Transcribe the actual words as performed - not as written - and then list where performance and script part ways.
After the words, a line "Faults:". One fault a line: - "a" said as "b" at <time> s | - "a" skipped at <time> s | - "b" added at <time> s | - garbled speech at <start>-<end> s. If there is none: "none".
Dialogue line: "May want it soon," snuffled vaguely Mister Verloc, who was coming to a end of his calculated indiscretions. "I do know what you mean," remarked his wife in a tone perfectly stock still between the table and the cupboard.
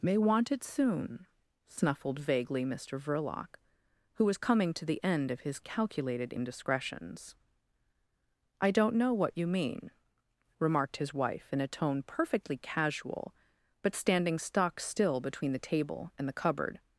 "May want it soon," snuffled vaguely Mister Verloc, who was coming to the end of his calculated indiscretions. "I don't know what you mean," remarked his wife in a tone perfectly casual, but standing stock still between the table and the cupboard.
Faults:
- "a" said as "the" at 4.8 s
- "do" said as "don't" at 8.7 s
- "casual but standing" added at 12.6 s